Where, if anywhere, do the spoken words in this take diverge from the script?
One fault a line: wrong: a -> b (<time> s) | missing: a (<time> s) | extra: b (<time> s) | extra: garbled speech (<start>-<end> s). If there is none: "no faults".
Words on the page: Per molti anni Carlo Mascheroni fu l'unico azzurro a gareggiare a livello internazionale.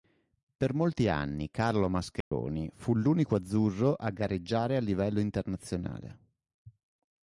no faults